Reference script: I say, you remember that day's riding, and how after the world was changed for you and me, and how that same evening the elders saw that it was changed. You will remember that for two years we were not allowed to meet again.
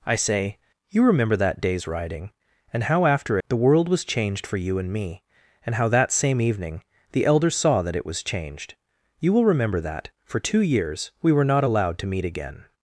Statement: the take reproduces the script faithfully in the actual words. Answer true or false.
true